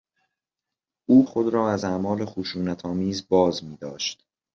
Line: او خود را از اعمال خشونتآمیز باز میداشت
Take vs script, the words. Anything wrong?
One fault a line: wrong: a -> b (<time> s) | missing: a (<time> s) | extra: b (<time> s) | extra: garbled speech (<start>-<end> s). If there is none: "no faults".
no faults